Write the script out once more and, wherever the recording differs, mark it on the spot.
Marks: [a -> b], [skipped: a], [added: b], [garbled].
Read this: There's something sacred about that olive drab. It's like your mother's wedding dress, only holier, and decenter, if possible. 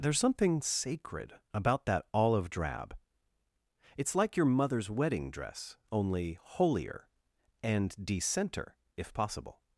There's something sacred about that olive drab. It's like your mother's wedding dress, only holier, and decenter, if possible.